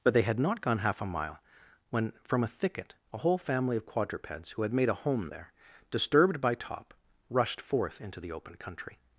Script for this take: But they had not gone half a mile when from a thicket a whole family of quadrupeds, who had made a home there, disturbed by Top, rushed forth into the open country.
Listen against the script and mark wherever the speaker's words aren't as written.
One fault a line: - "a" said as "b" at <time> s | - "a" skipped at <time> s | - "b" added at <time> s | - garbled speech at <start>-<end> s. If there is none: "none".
none